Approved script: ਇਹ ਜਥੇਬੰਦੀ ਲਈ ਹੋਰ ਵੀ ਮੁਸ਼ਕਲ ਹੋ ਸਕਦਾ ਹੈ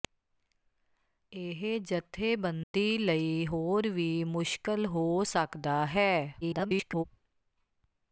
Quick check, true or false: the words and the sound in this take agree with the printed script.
false